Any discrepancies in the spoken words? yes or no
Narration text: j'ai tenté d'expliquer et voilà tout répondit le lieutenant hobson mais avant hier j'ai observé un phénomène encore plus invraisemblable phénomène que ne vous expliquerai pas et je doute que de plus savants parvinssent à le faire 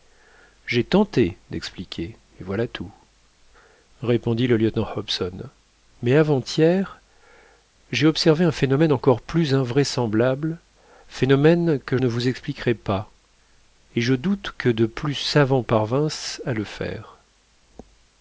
no